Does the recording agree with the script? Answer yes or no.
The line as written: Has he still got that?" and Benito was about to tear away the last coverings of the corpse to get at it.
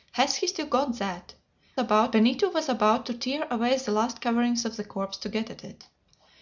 no